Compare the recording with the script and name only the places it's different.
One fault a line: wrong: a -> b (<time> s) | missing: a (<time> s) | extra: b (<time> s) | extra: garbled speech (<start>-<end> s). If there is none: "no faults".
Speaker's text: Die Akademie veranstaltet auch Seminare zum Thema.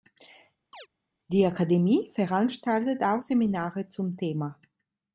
no faults